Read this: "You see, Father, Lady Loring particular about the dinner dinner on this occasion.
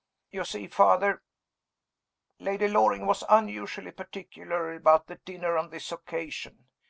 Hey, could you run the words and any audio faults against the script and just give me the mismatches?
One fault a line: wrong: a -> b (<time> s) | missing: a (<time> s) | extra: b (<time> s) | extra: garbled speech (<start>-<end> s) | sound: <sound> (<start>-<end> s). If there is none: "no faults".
extra: was unusually (3.1 s)
missing: dinner (5.6 s)